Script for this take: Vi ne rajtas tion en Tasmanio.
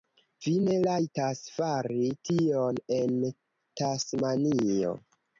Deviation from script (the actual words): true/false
true